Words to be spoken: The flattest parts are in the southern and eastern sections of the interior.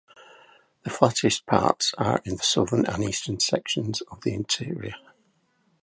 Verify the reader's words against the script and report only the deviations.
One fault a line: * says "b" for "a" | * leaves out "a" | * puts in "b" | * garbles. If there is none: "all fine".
all fine